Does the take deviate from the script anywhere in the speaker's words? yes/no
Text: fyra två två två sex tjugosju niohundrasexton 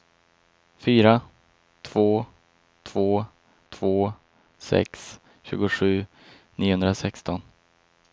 no